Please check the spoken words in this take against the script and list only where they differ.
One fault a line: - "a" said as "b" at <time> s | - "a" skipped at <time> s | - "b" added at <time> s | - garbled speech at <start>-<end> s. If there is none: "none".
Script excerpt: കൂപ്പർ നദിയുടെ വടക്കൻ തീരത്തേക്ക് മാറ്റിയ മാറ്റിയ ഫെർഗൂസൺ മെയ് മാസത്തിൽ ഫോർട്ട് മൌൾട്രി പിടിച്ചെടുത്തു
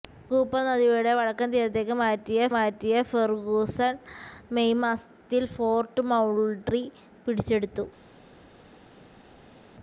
none